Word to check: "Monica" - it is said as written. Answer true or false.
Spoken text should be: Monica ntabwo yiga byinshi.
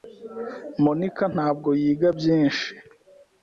true